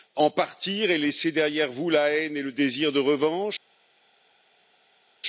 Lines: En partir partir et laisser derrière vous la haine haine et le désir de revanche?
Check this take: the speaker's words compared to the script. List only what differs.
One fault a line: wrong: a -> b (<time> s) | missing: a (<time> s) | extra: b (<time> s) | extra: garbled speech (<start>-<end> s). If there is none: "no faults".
missing: partir (0.9 s)
missing: haine (2.4 s)